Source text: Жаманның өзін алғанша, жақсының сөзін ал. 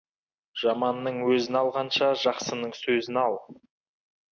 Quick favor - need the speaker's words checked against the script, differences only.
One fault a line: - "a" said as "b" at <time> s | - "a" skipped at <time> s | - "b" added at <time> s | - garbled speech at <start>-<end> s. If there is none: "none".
none